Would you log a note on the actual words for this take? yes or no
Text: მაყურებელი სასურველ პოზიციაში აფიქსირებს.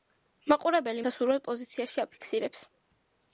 no